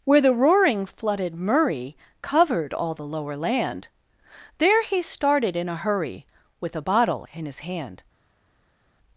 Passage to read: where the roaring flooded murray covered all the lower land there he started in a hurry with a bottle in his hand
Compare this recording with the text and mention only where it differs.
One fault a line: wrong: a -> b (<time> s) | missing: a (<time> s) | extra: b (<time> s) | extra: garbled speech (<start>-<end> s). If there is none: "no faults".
no faults